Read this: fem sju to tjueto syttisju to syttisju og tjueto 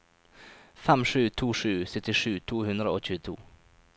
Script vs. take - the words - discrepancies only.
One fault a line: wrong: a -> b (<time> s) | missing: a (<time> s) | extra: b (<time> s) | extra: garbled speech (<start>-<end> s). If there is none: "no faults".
wrong: tjueto -> sju (1.6 s)
wrong: syttisju -> hundre (2.7 s)